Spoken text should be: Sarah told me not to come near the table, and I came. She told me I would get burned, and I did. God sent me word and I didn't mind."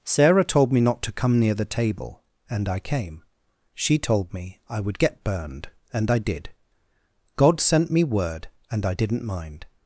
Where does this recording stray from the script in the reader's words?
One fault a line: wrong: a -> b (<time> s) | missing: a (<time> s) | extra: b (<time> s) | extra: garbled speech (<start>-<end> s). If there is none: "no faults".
no faults